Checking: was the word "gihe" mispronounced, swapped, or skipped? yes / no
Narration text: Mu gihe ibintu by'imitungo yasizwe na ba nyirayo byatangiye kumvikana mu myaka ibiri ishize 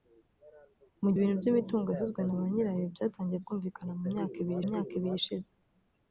yes